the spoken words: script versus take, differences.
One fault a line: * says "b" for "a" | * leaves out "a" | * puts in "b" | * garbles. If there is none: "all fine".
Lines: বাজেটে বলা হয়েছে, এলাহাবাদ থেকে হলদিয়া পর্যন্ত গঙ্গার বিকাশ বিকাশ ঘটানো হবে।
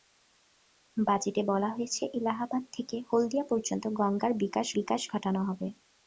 all fine